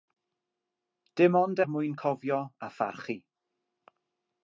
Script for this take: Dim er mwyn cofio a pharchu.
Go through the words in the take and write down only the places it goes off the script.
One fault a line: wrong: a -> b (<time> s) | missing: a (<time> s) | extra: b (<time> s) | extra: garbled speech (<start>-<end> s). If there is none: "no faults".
extra: ond (1.4 s)